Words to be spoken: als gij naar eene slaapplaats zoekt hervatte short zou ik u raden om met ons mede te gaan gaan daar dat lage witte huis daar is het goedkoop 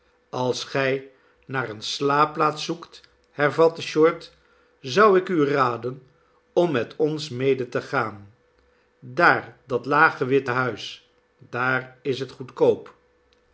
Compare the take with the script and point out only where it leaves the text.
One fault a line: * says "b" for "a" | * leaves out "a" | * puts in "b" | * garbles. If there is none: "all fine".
* leaves out "gaan"